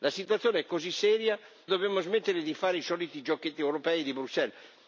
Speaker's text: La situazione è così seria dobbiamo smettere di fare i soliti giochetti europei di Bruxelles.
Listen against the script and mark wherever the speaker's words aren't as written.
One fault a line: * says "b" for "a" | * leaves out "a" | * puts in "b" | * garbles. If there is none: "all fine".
all fine